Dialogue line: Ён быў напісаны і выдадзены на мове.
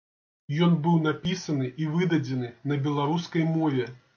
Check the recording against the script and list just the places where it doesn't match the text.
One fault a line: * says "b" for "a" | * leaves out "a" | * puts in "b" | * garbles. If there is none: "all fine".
* puts in "беларускай"